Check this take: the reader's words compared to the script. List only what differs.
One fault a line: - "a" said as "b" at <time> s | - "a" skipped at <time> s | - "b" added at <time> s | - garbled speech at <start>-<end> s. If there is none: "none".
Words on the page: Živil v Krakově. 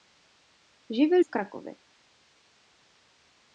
none